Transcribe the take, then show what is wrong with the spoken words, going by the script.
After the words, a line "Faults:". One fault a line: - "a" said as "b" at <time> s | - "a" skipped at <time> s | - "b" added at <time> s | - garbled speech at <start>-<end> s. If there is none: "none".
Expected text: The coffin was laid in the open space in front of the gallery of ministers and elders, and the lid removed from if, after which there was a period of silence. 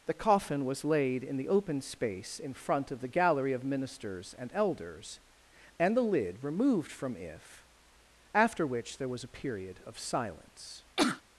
The coffin was laid in the open space in front of the gallery of ministers and elders, and the lid removed from if, after which there was a period of silence.
Faults:
none